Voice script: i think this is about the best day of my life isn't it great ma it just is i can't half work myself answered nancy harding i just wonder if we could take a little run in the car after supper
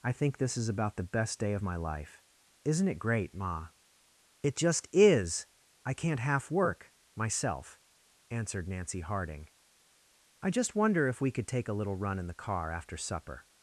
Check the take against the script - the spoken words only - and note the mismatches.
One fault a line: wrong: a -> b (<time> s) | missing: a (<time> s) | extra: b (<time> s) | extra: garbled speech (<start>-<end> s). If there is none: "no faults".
no faults